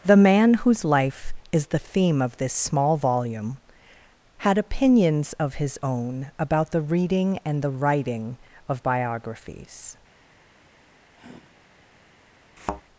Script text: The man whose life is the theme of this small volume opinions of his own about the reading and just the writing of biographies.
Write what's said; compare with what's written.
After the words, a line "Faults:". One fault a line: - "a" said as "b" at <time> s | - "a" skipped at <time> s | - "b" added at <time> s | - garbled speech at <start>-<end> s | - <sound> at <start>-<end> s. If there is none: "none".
The man whose life is the theme of this small volume had opinions of his own about the reading and the writing of biographies.
Faults:
- "had" added at 4.4 s
- "just" skipped at 7.6 s
- sigh at 11.1-11.7 s
- thud at 12.6-12.8 s